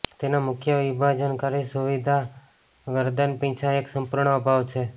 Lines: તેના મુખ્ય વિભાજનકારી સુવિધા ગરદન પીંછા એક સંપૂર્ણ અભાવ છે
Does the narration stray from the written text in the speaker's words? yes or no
no